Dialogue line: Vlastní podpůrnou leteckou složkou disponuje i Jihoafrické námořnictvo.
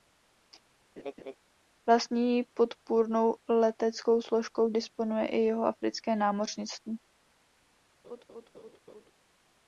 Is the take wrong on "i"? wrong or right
right